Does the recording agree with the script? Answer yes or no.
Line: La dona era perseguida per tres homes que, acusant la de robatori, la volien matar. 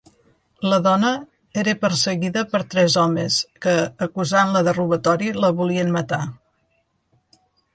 yes